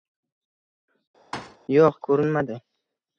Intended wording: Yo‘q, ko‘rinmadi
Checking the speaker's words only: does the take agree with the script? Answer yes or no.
yes